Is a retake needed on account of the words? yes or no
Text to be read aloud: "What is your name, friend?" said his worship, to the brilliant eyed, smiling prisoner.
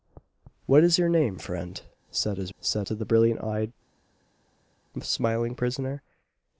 yes